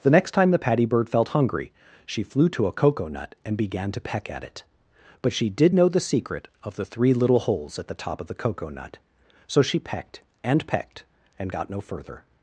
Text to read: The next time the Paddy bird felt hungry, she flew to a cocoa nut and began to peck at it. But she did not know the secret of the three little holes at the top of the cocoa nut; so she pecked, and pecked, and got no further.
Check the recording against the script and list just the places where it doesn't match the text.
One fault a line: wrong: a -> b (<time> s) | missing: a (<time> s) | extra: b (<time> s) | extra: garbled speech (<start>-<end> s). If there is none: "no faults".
missing: not (5.8 s)